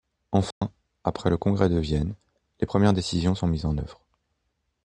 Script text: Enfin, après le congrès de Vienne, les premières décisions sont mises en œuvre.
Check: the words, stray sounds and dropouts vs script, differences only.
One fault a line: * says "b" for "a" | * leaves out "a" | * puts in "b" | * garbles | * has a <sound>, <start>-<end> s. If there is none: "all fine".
* has a dropout, 0.5-0.6 s